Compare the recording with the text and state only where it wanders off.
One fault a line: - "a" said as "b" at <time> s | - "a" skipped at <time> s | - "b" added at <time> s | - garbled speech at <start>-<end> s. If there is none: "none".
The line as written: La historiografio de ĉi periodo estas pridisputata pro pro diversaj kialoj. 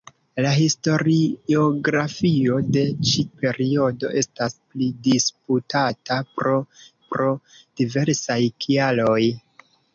none